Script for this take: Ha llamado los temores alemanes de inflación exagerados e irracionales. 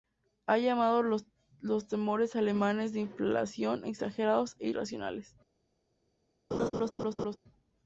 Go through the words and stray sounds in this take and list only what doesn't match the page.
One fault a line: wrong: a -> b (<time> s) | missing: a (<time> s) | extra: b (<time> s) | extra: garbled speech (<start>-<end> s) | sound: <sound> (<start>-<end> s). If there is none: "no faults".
sound: laugh (6.5-7.4 s)